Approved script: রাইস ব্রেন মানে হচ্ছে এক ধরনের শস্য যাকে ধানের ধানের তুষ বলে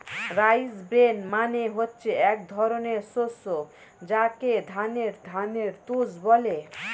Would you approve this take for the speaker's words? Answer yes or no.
yes